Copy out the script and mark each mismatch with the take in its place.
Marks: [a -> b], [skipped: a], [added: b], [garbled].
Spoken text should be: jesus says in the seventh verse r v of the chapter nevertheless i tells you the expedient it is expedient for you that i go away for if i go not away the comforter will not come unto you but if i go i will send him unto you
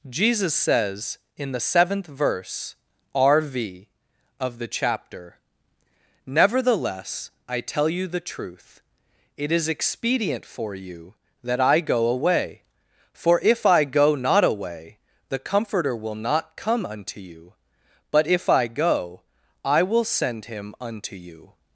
jesus says in the seventh verse r v of the chapter nevertheless i [tells -> tell] you the [expedient -> truth] it is expedient for you that i go away for if i go not away the comforter will not come unto you but if i go i will send him unto you